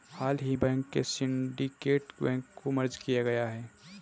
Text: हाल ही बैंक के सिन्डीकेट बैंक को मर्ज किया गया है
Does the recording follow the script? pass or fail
pass